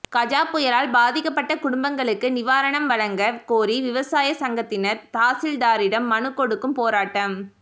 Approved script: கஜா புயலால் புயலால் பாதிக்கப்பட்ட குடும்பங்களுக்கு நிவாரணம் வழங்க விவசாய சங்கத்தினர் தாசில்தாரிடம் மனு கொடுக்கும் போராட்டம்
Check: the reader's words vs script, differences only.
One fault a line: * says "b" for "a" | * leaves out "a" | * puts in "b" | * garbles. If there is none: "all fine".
* leaves out "புயலால்"
* puts in "கோரி"